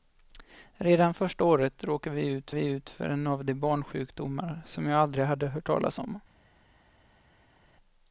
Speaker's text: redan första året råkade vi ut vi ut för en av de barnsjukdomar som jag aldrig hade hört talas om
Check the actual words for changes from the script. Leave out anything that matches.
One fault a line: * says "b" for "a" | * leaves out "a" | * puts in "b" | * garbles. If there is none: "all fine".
all fine